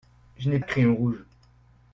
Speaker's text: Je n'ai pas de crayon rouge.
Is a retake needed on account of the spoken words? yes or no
yes